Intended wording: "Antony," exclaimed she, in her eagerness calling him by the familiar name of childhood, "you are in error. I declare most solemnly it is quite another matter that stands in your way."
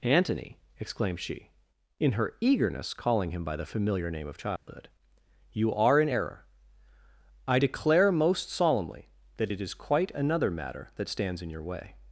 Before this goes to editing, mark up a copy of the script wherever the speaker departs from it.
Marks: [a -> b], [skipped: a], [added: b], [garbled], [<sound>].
"Antony," exclaimed she, in her eagerness calling him by the familiar name of childhood, [dropout] "you are in error. I declare most solemnly [added: that] it is quite another matter that stands in your way."